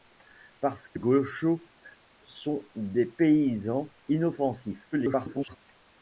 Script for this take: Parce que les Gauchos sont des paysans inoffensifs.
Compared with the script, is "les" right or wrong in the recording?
wrong